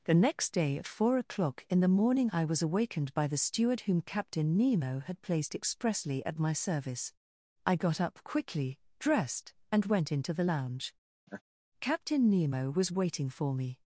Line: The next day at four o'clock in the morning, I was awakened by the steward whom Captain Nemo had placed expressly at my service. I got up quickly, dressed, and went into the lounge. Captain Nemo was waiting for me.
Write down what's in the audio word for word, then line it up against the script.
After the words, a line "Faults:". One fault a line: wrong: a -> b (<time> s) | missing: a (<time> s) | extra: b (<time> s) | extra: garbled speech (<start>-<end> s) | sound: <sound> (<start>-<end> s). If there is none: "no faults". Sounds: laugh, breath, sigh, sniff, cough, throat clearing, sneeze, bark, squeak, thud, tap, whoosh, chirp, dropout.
The next day at four o'clock in the morning, I was awakened by the steward whom Captain Nemo had placed expressly at my service. I got up quickly, dressed, and went into the lounge. Captain Nemo was waiting for me.
Faults:
sound: laugh (11.3-11.4 s)